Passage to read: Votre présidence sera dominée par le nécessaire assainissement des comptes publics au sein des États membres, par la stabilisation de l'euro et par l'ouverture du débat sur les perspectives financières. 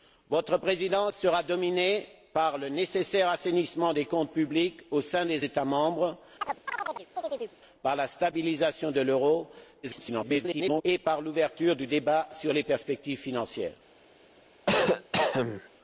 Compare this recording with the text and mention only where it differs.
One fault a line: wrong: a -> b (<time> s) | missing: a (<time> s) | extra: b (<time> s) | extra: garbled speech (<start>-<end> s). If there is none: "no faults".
extra: garbled speech (9.8-10.8 s)